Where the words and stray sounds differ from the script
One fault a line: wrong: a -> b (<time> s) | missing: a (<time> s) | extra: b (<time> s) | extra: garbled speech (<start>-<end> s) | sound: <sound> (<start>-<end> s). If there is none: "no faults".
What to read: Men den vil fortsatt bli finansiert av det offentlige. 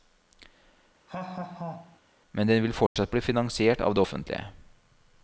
sound: laugh (1.1-2.0 s)
sound: dropout (2.9-3.0 s)